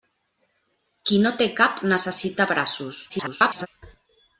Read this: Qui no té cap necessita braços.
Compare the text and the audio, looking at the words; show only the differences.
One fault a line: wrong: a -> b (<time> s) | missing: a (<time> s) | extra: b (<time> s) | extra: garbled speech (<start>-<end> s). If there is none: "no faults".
extra: garbled speech (3.1-3.7 s)